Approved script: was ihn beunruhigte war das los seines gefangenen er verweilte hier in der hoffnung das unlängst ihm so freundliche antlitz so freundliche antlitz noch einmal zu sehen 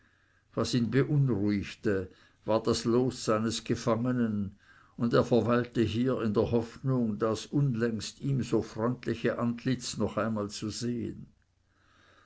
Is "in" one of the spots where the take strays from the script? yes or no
no